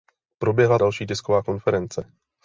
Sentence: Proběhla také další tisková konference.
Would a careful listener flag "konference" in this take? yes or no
no